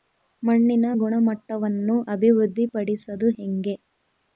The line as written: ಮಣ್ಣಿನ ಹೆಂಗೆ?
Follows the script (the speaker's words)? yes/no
no